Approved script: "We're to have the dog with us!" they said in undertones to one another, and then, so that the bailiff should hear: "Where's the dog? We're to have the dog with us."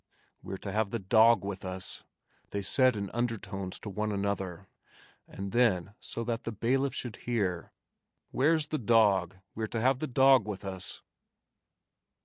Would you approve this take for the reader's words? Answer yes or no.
yes